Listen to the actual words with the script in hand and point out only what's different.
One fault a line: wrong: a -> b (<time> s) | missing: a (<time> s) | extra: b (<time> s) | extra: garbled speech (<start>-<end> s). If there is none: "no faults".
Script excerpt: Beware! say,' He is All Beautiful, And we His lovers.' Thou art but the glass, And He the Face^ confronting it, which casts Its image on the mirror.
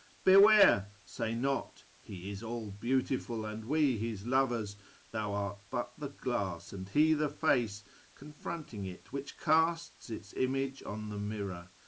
extra: not (1.4 s)